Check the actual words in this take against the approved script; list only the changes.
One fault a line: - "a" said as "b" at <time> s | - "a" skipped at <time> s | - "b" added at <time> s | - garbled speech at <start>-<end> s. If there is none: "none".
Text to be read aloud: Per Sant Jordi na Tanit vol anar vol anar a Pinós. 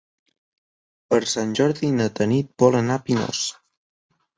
- "vol anar" skipped at 3.0 s